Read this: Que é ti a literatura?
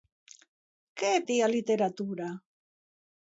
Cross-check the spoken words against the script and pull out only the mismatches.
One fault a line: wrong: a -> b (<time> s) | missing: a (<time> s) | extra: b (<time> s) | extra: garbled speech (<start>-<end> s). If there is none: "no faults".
no faults